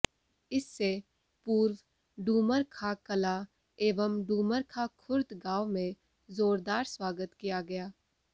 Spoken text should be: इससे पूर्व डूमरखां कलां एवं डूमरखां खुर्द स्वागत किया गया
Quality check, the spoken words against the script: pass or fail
fail